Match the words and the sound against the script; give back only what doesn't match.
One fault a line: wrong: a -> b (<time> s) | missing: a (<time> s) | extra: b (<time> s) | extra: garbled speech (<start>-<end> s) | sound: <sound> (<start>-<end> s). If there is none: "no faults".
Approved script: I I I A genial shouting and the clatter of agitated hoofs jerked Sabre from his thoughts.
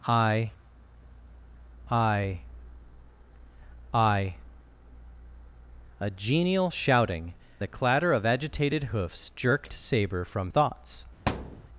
missing: and (7.3 s)
missing: his (10.5 s)
sound: thud (11.3-11.7 s)